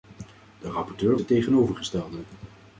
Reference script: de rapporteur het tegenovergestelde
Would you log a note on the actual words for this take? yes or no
no